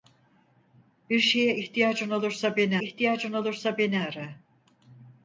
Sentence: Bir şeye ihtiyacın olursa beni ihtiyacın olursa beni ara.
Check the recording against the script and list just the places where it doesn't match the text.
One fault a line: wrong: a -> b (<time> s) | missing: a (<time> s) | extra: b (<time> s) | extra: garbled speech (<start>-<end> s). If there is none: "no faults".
no faults